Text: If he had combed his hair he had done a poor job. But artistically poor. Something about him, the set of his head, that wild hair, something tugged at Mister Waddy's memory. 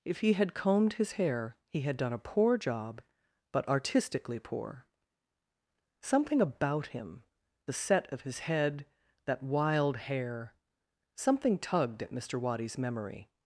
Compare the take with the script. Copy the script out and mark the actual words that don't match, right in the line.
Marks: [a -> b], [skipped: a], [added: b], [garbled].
If he had combed his hair he had done a poor job. But artistically poor. Something about him, the set of his head, that wild hair, something tugged at Mister Waddy's memory.